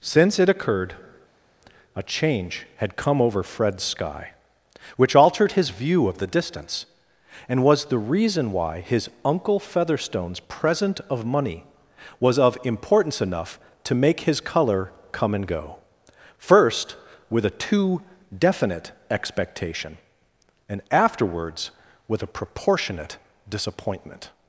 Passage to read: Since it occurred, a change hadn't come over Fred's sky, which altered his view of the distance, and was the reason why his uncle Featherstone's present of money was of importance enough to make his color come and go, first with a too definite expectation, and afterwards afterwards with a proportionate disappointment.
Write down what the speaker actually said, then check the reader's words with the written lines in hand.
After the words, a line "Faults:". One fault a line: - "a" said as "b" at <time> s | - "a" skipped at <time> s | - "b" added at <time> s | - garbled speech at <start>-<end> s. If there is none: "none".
Since it occurred, a change had come over Fred's sky, which altered his view of the distance, and was the reason why his uncle Featherstone's present of money was of importance enough to make his color come and go, first with a too definite expectation, and afterwards with a proportionate disappointment.
Faults:
- "hadn't" said as "had" at 2.8 s
- "afterwards" skipped at 21.7 s